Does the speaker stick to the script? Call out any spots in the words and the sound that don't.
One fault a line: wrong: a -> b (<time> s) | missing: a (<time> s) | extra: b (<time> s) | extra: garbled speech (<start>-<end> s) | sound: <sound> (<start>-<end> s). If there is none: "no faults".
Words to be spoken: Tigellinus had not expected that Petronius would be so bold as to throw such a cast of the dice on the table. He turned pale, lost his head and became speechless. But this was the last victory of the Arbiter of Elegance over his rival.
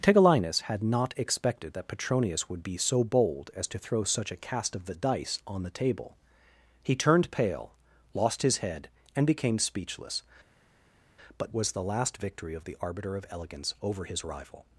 missing: this (11.6 s)